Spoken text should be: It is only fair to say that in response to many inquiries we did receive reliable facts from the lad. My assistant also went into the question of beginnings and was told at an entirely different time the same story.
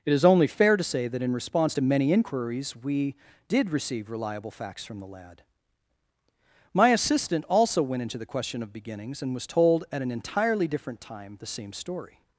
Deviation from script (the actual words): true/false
false